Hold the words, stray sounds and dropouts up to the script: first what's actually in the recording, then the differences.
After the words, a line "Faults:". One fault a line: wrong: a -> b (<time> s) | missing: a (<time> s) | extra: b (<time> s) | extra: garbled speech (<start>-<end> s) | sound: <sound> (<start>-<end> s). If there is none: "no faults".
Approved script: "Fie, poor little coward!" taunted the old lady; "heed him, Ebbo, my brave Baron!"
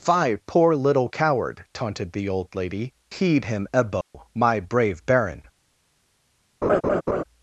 "Fie, poor little coward!" taunted the old lady; "heed him, Ebbo, my brave Baron!"
Faults:
sound: dropout (4.0-4.1 s)
sound: laugh (6.6-7.2 s)